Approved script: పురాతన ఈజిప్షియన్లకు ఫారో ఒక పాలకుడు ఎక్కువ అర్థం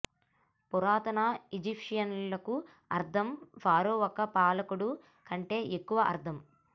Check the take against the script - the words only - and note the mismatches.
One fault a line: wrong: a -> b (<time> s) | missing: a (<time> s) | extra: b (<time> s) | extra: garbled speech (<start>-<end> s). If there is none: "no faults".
extra: అర్థం (2.9 s)
extra: కంటే (5.3 s)